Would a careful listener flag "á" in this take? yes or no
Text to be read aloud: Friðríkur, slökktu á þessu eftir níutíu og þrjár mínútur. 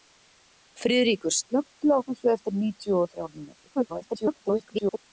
no